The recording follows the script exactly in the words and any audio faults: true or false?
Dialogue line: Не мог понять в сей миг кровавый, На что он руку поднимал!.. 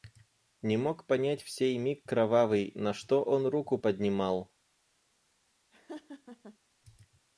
false